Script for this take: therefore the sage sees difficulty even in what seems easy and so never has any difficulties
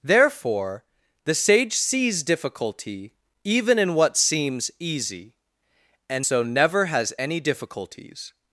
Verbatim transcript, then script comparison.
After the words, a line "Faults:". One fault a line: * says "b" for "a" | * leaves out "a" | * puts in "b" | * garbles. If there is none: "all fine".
therefore the sage sees difficulty even in what seems easy and so never has any difficulties
Faults:
all fine